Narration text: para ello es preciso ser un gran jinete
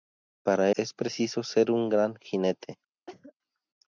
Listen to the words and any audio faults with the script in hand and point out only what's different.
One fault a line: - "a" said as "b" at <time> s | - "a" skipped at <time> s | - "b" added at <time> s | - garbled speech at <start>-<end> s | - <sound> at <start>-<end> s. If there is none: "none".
- "ello" skipped at 0.7 s
- cough at 3.1-3.3 s